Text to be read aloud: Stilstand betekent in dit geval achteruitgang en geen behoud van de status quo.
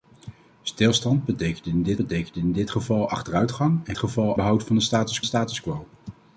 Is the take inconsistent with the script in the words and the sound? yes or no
yes